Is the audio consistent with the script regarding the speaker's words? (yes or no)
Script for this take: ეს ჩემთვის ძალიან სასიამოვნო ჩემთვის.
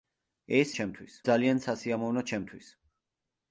yes